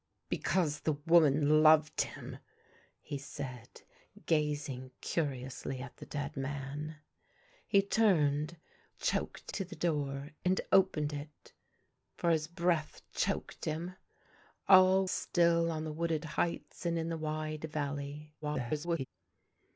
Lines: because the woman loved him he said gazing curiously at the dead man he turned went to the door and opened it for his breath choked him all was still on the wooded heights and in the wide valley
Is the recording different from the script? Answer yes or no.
yes